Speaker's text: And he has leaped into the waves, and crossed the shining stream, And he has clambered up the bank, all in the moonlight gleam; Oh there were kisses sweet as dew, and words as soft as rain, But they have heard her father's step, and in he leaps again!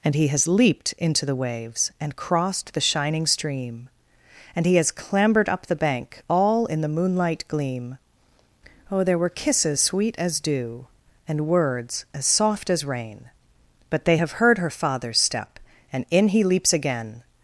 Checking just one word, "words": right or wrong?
right